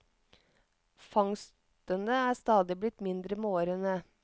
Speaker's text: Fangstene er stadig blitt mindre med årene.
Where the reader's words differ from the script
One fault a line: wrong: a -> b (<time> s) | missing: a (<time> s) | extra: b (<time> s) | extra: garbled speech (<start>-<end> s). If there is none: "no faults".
no faults